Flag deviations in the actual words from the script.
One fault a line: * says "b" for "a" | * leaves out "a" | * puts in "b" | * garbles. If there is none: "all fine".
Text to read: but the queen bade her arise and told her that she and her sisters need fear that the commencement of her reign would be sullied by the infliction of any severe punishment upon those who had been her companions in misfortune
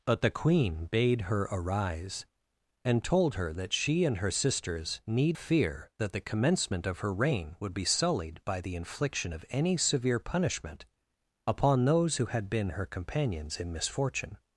all fine